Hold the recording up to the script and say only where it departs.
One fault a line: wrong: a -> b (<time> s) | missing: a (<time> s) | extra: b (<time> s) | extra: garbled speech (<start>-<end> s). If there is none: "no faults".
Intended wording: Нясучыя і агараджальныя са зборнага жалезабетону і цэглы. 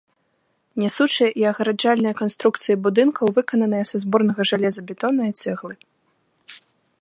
extra: канструкцыі будынкаў выкананыя (2.2 s)